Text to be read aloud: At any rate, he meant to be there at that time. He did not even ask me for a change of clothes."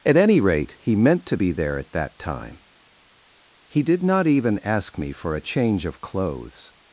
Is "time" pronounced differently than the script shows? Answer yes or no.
no